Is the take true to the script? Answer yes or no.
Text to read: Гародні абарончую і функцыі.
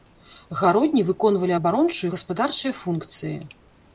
no